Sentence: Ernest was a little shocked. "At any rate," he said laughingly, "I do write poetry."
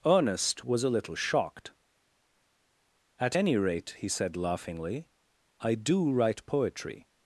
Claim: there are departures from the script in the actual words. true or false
false